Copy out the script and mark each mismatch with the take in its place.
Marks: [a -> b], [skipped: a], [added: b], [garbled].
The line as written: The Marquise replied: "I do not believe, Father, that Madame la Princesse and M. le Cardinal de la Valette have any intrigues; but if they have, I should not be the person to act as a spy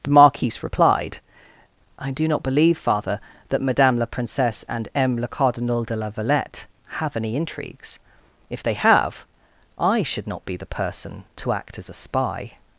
The Marquise replied: "I do not believe, Father, that Madame la Princesse and M. le Cardinal de la Valette have any intrigues; [skipped: but] if they have, I should not be the person to act as a spy